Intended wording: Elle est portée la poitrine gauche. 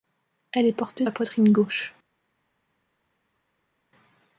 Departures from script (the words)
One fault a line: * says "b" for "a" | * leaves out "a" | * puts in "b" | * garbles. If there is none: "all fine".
all fine